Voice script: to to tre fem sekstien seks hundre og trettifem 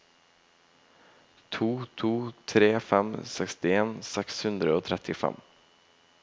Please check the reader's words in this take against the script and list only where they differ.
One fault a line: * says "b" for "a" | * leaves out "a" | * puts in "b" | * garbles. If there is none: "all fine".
all fine